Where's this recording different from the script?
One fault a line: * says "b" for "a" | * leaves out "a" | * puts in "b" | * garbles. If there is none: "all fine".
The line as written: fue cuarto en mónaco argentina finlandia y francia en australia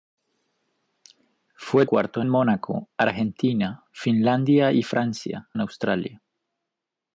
all fine